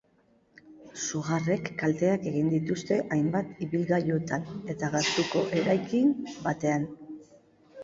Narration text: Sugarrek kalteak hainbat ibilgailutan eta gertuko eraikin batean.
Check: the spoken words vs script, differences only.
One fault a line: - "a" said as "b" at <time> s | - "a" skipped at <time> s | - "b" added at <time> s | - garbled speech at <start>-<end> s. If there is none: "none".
- "egin dituzte" added at 2.3 s